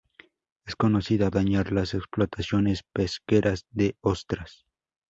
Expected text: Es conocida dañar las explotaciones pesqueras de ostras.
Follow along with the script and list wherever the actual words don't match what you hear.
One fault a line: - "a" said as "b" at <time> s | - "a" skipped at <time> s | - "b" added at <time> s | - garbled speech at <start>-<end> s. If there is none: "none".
none